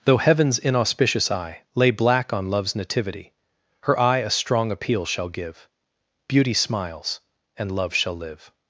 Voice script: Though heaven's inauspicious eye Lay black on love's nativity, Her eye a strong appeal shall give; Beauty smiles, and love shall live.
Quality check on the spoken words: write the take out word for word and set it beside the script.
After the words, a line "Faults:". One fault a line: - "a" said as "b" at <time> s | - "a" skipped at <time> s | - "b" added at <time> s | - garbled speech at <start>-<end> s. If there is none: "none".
Though heaven's inauspicious eye Lay black on love's nativity, Her eye a strong appeal shall give; Beauty smiles, and love shall live.
Faults:
none